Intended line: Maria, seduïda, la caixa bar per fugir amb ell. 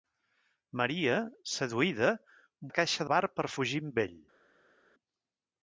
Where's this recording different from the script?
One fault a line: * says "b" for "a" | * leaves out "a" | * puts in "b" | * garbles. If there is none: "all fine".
all fine